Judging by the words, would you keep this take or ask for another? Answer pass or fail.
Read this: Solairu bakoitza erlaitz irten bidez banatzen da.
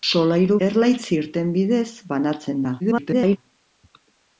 fail